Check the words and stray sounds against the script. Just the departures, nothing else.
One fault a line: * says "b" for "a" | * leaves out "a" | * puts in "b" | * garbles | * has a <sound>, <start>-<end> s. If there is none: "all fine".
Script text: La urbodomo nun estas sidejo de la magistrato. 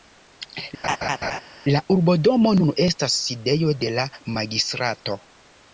* has a laugh, 0.8-1.4 s